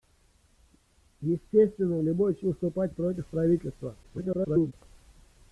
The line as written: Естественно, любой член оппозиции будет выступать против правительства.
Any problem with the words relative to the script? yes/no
yes